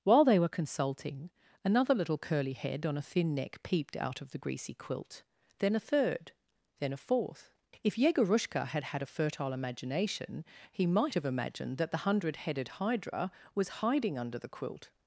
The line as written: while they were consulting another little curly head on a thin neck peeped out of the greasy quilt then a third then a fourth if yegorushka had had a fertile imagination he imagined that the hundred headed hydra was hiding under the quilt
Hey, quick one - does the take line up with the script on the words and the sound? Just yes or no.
no